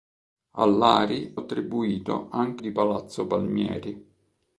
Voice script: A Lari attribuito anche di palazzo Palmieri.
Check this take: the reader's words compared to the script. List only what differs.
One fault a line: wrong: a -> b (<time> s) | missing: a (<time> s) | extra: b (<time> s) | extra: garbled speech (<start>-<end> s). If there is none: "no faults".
no faults